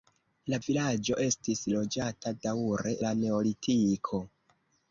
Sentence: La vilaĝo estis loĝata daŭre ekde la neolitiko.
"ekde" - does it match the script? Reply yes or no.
no